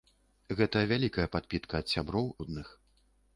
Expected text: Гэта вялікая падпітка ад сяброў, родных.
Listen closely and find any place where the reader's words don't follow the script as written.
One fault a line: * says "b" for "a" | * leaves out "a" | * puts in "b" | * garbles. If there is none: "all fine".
all fine